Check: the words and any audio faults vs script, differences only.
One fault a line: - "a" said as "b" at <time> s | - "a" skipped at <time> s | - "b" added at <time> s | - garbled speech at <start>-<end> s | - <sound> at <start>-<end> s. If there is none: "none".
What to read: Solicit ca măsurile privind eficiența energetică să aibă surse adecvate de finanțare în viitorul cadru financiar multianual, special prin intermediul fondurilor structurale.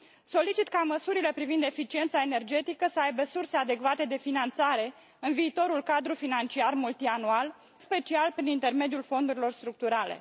none